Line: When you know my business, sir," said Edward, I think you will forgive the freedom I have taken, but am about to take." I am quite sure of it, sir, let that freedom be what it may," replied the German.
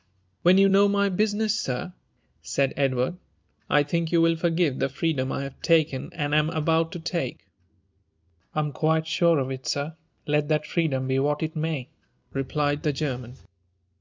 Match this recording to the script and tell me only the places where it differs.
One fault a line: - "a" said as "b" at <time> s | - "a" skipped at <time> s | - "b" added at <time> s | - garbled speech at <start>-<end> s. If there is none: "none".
- "but" said as "and" at 6.1 s